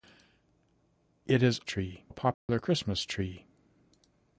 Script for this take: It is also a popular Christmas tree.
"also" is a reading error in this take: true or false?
true